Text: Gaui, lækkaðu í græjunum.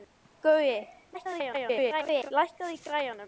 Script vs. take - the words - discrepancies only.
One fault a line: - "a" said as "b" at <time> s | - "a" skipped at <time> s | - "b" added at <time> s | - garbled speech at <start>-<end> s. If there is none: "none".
- garbled speech at 1.1-2.3 s